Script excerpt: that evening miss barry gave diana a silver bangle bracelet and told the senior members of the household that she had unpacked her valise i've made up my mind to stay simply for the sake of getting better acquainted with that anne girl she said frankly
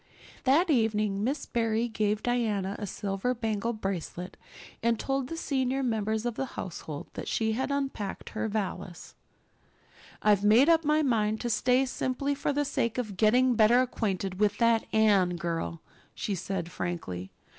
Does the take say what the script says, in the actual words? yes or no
yes